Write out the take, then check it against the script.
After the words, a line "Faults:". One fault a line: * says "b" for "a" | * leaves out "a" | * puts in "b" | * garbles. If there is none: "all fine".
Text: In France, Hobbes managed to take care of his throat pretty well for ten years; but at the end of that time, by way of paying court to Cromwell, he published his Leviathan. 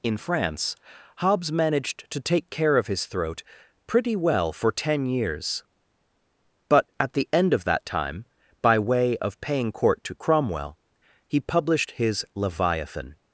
In France, Hobbes managed to take care of his throat pretty well for ten years; but at the end of that time, by way of paying court to Cromwell, he published his Leviathan.
Faults:
all fine